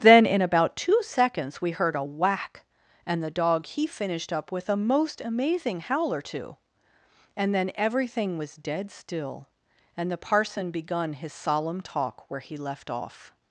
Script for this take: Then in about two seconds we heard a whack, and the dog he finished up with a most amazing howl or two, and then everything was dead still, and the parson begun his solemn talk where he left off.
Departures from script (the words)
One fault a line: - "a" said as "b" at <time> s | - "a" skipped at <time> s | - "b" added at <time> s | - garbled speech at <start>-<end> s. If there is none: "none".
none